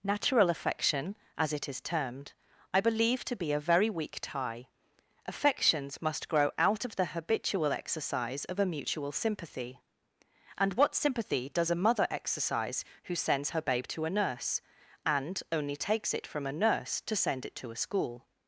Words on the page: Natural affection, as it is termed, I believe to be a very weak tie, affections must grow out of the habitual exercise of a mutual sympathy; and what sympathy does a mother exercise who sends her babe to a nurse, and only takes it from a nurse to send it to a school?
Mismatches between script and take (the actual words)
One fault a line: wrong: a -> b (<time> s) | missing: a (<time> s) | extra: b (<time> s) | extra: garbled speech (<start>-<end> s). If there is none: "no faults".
no faults